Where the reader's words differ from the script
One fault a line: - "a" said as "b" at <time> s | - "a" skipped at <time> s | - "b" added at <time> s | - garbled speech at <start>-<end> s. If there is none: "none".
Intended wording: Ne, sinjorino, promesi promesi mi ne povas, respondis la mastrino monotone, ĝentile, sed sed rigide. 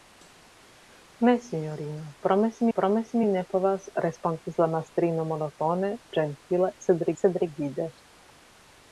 none